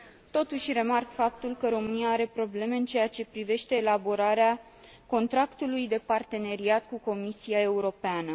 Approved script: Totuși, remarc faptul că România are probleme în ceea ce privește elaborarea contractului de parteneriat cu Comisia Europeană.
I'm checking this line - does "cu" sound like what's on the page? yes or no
yes